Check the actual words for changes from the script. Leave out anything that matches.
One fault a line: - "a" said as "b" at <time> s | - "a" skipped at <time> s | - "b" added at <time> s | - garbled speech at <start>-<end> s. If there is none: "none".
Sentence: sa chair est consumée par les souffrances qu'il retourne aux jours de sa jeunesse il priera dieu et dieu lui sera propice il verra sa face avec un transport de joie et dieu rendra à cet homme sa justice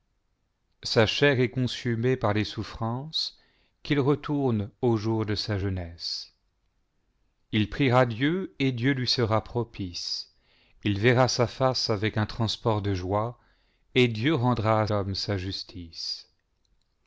- "cet" skipped at 14.9 s